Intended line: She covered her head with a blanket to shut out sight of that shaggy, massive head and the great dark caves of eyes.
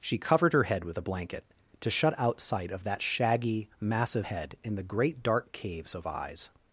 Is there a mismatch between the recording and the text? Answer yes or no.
yes